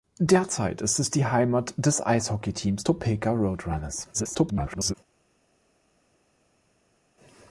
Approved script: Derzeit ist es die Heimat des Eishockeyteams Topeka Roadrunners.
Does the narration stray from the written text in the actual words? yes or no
yes